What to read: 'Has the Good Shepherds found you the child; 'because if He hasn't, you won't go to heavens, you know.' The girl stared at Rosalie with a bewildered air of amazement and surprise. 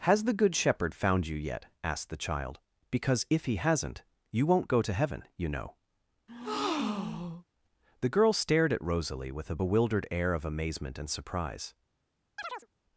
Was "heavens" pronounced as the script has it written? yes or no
no